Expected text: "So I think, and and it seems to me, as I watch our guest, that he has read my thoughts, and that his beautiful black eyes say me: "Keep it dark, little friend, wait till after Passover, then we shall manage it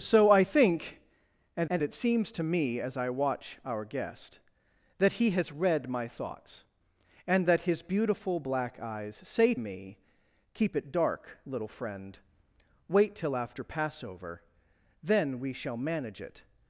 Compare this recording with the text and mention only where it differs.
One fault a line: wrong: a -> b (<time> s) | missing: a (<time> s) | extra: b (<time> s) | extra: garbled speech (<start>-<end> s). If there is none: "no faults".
no faults